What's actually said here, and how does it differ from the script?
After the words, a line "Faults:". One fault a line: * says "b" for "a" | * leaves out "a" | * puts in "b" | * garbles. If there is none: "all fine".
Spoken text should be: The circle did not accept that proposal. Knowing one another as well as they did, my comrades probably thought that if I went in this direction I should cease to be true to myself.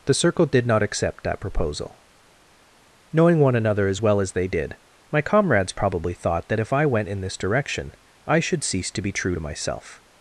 The circle did not accept that proposal. Knowing one another as well as they did, my comrades probably thought that if I went in this direction I should cease to be true to myself.
Faults:
all fine